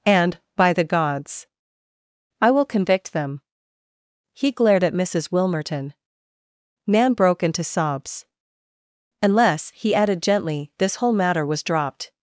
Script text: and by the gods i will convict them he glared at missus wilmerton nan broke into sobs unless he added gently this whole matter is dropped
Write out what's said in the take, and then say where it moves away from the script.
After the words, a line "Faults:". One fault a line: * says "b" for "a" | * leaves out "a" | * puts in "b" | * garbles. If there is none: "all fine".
and by the gods i will convict them he glared at missus wilmerton nan broke into sobs unless he added gently this whole matter was dropped
Faults:
* says "was" for "is"